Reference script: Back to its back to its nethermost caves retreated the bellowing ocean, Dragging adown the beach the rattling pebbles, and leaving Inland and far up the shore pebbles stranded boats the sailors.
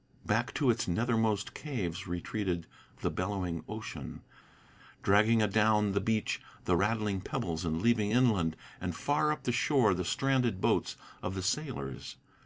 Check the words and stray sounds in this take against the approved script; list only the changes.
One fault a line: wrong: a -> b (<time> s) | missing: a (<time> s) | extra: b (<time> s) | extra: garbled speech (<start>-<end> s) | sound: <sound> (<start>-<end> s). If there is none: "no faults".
missing: back to its (0.9 s)
wrong: pebbles -> the (9.9 s)
extra: of (11.2 s)